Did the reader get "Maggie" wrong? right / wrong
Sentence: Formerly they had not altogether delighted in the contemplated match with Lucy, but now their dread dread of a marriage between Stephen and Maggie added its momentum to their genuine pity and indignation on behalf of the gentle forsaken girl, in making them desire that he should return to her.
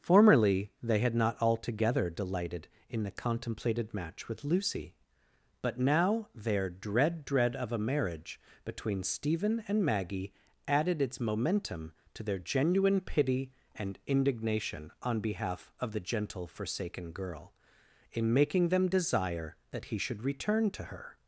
right